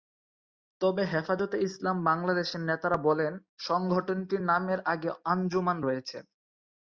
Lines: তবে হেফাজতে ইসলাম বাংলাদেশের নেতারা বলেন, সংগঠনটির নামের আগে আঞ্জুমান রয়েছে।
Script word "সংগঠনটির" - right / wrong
right